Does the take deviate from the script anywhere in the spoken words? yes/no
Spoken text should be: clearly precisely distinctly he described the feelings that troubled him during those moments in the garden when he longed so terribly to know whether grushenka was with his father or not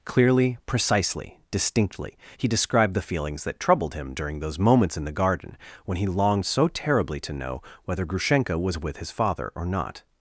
no